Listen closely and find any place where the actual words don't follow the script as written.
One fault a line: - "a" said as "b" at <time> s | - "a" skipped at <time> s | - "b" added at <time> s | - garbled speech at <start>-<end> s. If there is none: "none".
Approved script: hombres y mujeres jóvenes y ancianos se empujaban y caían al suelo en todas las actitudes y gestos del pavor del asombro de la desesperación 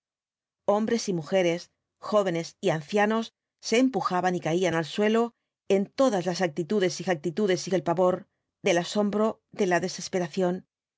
- "gestos" said as "actitudes" at 7.1 s